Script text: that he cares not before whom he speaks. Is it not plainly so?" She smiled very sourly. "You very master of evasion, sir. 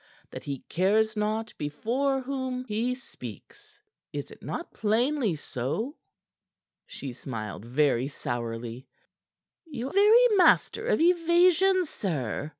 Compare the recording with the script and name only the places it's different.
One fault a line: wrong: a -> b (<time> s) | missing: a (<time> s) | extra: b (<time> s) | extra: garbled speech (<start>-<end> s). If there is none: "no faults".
no faults